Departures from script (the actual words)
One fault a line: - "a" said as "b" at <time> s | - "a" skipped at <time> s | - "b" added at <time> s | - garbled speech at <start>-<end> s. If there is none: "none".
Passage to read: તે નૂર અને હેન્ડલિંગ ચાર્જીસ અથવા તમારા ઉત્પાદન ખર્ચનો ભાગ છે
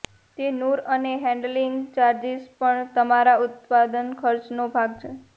- "અથવા" said as "પણ" at 2.6 s